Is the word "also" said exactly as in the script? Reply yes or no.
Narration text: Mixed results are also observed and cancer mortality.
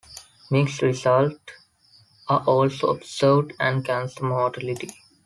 yes